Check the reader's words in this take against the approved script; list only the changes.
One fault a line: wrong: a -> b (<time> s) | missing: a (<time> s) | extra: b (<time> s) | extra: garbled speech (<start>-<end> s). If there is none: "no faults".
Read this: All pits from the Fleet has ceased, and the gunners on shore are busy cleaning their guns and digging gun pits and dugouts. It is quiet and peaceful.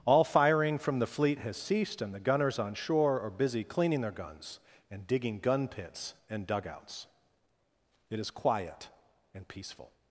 wrong: pits -> firing (0.2 s)